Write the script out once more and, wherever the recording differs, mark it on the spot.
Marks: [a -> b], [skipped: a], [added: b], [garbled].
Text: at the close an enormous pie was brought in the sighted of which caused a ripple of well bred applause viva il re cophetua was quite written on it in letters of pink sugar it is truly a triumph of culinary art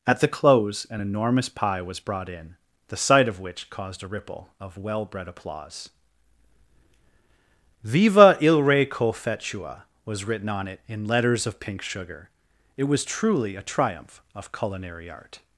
at the close an enormous pie was brought in the [sighted -> sight] of which caused a ripple of well bred applause viva il re cophetua was [skipped: quite] written on it in letters of pink sugar it [is -> was] truly a triumph of culinary art